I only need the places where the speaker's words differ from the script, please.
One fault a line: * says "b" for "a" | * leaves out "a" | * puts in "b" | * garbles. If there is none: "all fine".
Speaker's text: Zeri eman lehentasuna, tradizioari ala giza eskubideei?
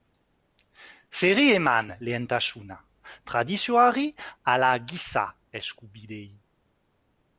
all fine